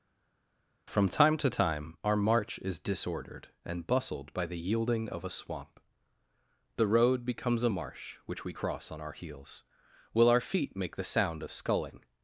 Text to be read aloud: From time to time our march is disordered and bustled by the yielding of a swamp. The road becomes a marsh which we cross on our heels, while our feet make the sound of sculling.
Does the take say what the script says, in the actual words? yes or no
no